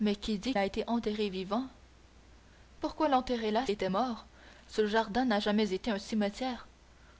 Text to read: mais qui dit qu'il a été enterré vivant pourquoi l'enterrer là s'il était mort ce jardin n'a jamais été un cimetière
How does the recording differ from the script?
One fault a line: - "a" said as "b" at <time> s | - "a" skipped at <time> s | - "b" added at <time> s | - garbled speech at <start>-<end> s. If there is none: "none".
- "qu'il" skipped at 0.6 s
- "s'il" skipped at 3.7 s